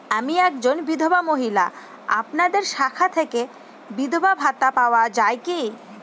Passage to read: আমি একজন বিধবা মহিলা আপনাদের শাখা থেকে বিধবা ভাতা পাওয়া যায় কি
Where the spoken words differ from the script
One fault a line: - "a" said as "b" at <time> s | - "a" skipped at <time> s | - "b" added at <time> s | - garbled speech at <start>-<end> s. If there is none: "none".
none